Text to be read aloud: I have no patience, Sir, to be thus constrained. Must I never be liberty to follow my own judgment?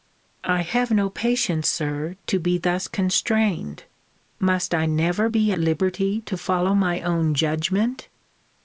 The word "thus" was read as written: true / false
true